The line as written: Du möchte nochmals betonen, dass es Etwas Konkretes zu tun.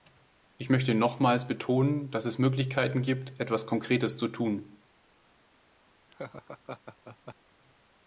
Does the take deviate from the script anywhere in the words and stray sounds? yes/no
yes